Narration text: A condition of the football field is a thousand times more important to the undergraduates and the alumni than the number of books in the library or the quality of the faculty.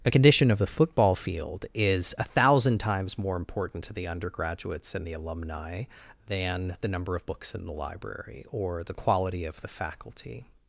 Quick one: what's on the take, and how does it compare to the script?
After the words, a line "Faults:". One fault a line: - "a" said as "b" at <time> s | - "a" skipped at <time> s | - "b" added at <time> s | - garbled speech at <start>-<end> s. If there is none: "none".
A condition of the football field is a thousand times more important to the undergraduates and the alumni than the number of books in the library or the quality of the faculty.
Faults:
none